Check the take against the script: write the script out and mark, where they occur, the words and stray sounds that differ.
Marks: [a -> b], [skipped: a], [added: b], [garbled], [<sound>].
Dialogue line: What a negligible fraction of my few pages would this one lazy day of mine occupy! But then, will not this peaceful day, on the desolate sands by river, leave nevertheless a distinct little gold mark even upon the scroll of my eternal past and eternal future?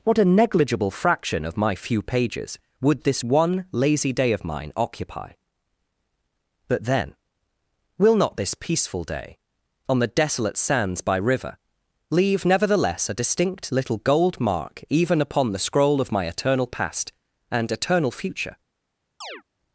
What a negligible fraction of my few pages would this one lazy day of mine occupy! But then, will not this peaceful day, on the desolate sands by river, leave nevertheless a distinct little gold mark even upon the scroll of my eternal past and eternal future? [chirp]